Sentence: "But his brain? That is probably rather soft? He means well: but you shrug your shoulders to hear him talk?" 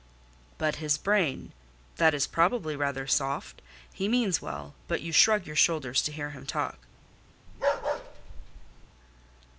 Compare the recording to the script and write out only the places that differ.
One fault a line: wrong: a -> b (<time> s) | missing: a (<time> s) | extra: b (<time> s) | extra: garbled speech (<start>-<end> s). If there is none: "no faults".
no faults